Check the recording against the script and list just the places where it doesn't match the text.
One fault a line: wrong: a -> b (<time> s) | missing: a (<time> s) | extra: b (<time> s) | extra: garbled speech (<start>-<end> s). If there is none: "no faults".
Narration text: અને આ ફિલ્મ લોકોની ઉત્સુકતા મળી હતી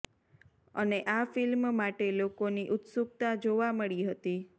extra: માટે (1.8 s)
extra: જોવા (3.4 s)